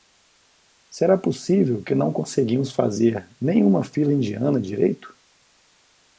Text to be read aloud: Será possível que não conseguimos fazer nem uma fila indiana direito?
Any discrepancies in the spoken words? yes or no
no